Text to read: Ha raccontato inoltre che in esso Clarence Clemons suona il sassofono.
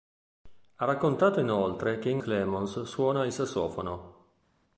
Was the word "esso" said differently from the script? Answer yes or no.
yes